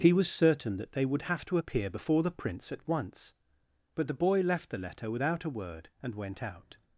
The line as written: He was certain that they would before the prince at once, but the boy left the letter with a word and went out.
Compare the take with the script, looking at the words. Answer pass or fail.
fail